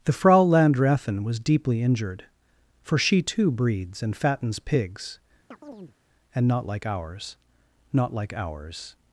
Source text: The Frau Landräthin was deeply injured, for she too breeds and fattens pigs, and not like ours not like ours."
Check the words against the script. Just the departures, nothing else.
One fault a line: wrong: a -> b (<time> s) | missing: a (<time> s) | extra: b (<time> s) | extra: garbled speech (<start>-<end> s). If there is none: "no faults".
no faults